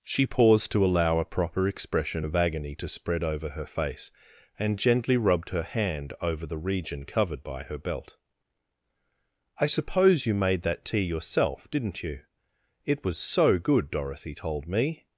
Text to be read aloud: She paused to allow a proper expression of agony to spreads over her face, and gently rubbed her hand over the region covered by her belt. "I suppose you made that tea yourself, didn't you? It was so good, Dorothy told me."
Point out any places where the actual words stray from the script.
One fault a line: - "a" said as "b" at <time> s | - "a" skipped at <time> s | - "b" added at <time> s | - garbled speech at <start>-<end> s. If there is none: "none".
- "spreads" said as "spread" at 2.9 s